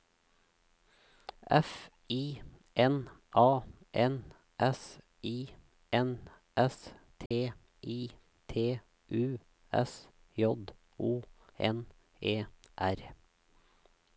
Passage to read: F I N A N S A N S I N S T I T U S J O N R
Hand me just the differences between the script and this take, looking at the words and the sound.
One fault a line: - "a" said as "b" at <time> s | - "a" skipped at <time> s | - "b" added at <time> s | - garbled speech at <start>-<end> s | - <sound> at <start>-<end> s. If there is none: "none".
- "A N S" skipped at 5.0 s
- dropout at 7.3-7.3 s
- "E" added at 12.2 s